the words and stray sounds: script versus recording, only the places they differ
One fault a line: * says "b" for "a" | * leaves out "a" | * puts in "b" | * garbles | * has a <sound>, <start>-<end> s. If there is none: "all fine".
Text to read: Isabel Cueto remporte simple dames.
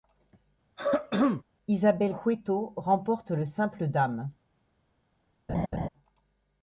* has a throat clearing, 0.8-1.4 s
* puts in "le"
* has a laugh, 5.5-5.9 s